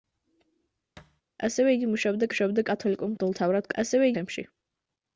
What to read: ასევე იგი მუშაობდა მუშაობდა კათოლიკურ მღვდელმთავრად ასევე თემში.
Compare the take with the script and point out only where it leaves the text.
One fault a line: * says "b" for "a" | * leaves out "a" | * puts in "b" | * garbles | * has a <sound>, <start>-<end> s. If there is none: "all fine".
* has a thud, 1.0-1.2 s